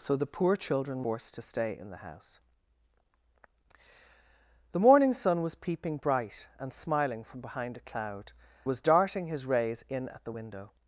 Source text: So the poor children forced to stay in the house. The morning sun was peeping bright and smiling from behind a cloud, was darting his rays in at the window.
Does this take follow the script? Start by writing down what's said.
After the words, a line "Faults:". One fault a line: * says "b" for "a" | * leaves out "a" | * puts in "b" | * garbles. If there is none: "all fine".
So the poor children forced to stay in the house. The morning sun was peeping bright and smiling from behind a cloud, was darting his rays in at the window.
Faults:
all fine